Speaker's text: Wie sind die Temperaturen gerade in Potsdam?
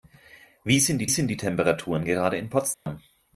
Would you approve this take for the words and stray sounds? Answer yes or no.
no